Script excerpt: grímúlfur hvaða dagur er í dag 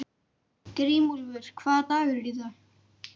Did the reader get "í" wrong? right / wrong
right